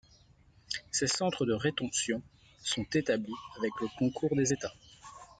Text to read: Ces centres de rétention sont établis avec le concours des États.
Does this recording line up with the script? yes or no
yes